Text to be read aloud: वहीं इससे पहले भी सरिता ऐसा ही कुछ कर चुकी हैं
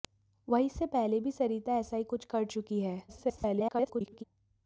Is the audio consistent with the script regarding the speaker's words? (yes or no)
no